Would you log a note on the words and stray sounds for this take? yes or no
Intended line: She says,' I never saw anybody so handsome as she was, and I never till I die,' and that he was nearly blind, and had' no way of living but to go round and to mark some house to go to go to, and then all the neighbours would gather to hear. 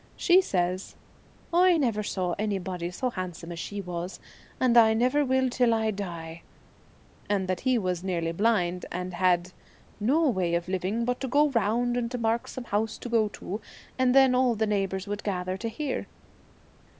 yes